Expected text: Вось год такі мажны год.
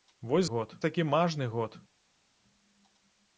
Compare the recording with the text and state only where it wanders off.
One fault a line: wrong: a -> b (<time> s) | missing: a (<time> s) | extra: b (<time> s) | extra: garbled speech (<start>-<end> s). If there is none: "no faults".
no faults